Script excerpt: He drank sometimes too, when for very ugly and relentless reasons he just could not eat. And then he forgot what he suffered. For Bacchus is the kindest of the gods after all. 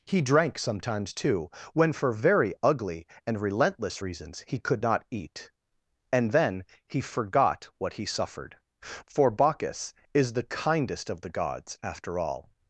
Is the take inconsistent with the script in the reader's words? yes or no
yes